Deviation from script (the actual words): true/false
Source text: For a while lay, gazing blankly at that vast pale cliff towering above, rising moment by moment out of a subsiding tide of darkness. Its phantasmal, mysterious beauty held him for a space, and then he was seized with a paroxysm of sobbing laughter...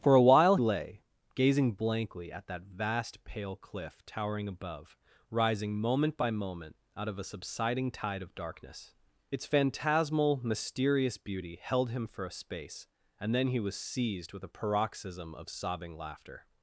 false